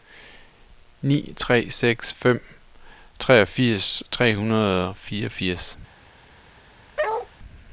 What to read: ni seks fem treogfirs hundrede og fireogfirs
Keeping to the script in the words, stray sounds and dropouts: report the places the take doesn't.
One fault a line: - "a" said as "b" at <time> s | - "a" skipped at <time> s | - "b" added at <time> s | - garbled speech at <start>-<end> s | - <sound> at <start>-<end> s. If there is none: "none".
- "tre" added at 1.4 s
- "tre" added at 4.1 s
- bark at 7.0-7.3 s